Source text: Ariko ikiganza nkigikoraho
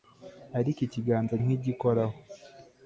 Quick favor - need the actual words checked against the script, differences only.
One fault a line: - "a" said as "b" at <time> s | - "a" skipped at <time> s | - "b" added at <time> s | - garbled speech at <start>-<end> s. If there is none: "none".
none